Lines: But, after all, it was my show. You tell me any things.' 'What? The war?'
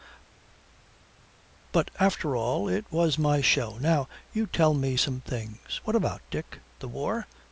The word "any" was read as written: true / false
false